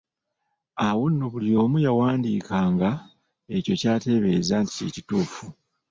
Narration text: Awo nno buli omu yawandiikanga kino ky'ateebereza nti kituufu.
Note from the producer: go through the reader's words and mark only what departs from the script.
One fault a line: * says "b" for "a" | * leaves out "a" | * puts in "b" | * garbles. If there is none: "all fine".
* says "ekyo" for "kino"
* puts in "kye"